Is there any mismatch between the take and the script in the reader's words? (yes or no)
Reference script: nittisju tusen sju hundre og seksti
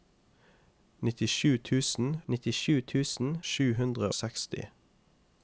yes